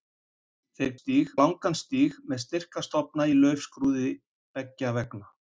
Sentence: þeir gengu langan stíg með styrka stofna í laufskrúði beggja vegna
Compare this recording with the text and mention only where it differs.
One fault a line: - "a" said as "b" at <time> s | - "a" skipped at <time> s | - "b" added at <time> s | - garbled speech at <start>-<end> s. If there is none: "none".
- "gengu" said as "stíg" at 1.0 s